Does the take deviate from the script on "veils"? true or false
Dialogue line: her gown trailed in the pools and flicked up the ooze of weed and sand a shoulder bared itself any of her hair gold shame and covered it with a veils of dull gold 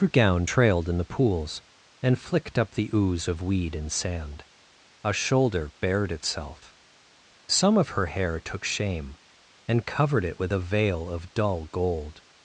true